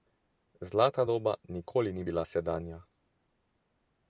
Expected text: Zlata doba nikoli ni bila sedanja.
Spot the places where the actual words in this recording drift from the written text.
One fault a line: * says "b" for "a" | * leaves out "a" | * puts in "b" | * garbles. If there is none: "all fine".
all fine